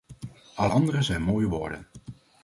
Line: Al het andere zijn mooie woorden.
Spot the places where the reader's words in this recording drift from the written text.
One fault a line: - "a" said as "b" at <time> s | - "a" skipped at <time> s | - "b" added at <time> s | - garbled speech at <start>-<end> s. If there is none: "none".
- "het" skipped at 0.7 s